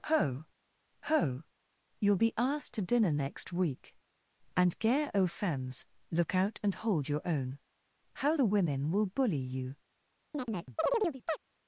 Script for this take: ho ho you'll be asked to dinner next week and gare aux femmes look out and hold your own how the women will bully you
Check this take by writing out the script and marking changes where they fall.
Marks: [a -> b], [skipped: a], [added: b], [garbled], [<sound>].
ho ho you'll be asked to dinner next week and gare aux femmes look out and hold your own how the women will bully you [chirp]